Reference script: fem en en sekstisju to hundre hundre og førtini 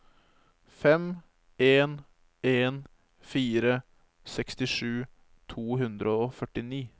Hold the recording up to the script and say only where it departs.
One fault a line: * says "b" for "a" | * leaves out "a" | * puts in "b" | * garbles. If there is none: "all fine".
* puts in "fire"
* leaves out "hundre"